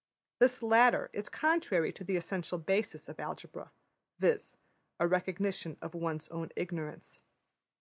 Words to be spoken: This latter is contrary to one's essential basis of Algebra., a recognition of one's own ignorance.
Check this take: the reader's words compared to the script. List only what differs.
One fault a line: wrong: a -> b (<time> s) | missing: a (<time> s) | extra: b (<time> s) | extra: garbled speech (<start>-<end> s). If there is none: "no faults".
wrong: one's -> the (2.1 s)
extra: viz (4.2 s)